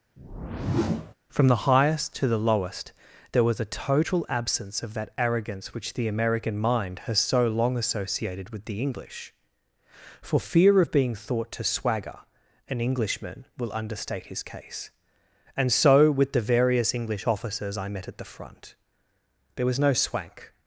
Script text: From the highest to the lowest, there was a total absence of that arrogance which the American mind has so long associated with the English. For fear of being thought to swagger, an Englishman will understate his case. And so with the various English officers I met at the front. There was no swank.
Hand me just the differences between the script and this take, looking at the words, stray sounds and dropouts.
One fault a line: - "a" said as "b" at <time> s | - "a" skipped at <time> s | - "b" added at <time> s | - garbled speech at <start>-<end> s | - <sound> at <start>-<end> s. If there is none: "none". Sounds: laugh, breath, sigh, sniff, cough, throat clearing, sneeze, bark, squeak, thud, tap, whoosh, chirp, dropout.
- whoosh at 0.2-1.1 s